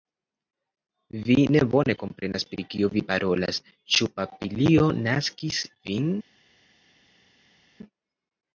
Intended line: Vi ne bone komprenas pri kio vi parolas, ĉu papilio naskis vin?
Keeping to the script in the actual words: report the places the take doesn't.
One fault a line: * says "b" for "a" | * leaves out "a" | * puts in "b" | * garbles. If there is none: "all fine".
all fine